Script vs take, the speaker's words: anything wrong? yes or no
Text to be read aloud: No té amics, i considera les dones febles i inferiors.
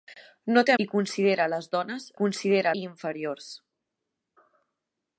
yes